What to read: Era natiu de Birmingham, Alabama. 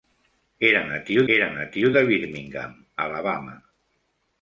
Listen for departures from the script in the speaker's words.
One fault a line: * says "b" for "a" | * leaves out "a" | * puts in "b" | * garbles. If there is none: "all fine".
* puts in "era natiu"